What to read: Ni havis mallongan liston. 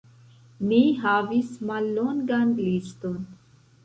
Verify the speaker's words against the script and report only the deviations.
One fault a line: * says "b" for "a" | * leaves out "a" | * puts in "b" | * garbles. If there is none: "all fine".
all fine